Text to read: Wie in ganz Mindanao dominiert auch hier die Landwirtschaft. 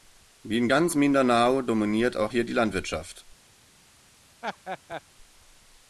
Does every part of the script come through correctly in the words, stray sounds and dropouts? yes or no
no